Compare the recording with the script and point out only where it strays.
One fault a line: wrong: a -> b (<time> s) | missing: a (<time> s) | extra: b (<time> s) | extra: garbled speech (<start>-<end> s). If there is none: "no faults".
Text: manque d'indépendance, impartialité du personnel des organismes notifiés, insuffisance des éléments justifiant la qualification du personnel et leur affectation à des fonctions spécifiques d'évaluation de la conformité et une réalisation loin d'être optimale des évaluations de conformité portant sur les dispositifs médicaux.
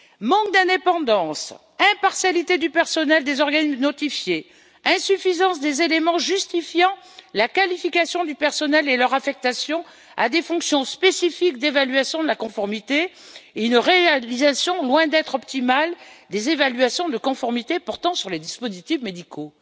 no faults